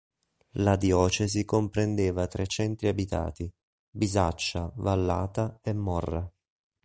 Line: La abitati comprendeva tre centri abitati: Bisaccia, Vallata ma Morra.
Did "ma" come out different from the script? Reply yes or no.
yes